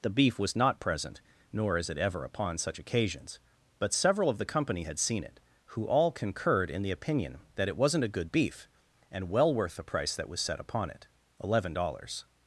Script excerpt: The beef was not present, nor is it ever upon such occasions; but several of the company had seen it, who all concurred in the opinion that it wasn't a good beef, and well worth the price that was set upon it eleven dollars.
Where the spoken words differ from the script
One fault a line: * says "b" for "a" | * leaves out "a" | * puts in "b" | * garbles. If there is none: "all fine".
all fine